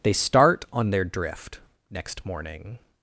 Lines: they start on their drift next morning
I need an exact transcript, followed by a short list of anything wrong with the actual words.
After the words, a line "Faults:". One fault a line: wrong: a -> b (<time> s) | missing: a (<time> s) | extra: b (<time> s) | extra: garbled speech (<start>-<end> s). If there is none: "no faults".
they start on their drift next morning
Faults:
no faults